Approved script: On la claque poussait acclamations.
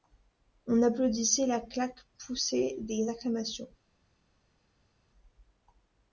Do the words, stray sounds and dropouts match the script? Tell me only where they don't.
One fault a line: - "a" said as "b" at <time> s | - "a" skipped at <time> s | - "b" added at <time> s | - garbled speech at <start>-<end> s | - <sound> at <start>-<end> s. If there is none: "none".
- "applaudissait" added at 0.8 s
- "des" added at 2.8 s